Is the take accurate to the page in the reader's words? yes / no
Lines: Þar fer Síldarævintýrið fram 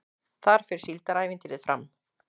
yes